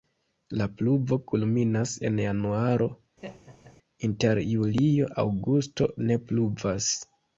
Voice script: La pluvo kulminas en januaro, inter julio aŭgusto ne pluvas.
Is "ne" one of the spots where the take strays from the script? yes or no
no